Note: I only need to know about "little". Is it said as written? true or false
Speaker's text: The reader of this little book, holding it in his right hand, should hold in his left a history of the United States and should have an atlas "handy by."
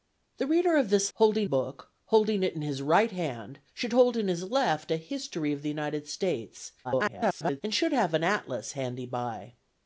false